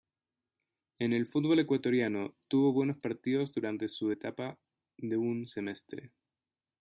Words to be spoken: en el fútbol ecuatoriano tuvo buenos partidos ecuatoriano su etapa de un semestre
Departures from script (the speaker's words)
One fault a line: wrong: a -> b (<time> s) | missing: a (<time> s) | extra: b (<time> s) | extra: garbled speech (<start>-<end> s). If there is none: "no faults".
wrong: ecuatoriano -> durante (3.5 s)